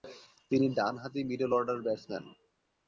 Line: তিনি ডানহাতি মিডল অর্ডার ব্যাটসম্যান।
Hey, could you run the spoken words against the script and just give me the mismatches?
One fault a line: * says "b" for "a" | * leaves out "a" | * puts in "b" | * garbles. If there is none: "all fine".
all fine